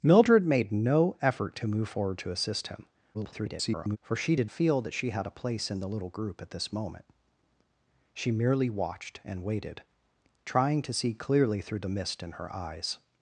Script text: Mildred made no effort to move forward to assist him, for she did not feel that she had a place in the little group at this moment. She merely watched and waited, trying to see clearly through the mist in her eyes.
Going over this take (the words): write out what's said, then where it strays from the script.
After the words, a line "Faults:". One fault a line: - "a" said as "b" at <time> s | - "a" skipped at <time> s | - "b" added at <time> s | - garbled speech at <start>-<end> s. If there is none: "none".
Mildred made no effort to move forward to assist him, [garbled] for she did feel that she had a place in the little group at this moment. She merely watched and waited, trying to see clearly through the mist in her eyes.
Faults:
- garbled speech at 3.1-4.0 s
- "not" skipped at 4.5 s